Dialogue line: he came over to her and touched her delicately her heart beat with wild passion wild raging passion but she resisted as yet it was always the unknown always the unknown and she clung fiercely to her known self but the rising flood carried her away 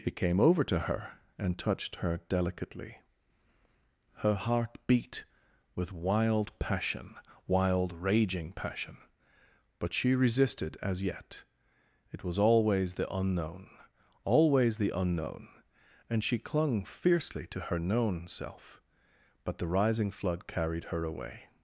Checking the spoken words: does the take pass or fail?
pass